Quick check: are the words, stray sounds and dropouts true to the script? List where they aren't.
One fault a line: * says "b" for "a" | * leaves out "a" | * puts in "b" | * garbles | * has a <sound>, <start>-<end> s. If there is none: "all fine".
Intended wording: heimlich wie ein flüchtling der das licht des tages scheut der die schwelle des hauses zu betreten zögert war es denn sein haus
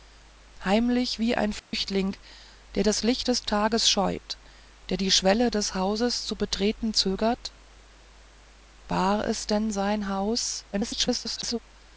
* has a dropout, 1.6-1.7 s
* garbles